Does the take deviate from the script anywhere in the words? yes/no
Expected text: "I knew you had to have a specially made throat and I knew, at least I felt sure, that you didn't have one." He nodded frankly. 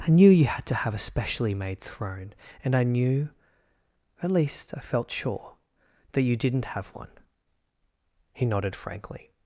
yes